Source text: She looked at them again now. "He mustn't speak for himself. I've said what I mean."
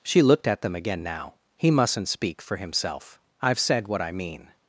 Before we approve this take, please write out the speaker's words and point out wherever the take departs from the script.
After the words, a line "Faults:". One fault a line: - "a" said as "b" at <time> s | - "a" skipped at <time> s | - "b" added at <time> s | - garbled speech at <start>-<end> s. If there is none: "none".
She looked at them again now. "He mustn't speak for himself. I've said what I mean."
Faults:
none